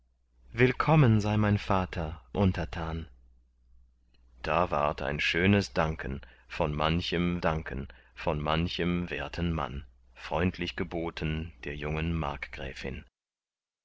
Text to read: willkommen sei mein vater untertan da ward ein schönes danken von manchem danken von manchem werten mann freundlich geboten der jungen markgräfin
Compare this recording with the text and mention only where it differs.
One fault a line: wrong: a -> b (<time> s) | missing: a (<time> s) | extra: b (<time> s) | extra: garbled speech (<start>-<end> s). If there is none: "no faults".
no faults